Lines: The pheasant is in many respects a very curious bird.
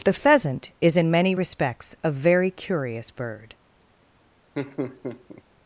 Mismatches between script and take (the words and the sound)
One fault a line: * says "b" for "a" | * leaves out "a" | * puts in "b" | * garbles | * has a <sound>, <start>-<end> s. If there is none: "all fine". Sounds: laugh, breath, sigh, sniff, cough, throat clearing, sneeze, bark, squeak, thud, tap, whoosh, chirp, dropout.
* has a laugh, 4.6-5.4 s